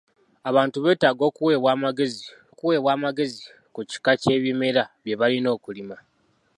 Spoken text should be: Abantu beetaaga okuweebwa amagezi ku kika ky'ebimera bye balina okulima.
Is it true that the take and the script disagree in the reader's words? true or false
true